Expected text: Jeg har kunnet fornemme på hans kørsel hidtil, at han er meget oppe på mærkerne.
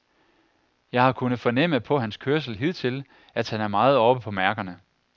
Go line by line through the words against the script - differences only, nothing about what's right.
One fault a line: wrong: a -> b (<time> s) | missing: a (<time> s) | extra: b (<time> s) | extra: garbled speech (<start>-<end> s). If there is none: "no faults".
no faults